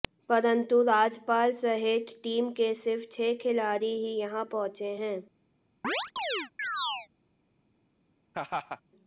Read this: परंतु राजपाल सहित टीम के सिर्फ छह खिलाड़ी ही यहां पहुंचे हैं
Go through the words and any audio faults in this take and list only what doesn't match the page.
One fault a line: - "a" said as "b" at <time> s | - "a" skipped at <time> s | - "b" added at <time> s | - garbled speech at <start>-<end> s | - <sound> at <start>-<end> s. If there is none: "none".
- chirp at 5.8-7.1 s
- laugh at 8.3-8.8 s